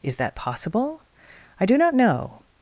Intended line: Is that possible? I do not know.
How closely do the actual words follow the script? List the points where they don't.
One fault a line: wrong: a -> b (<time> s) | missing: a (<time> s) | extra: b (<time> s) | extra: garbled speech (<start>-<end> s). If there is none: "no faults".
no faults